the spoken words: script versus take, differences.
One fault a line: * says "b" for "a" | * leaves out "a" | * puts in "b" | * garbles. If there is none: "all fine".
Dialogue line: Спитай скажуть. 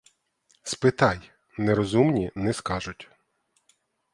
* puts in "нерозумні не"